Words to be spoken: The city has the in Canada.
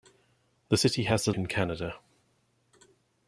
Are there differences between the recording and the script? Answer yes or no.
no